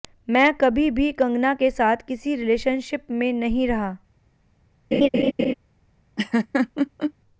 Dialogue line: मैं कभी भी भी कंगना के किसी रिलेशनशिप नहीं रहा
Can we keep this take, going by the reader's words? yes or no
no